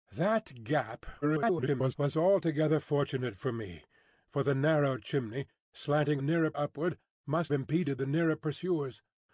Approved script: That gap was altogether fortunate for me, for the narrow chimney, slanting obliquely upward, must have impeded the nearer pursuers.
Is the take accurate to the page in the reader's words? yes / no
no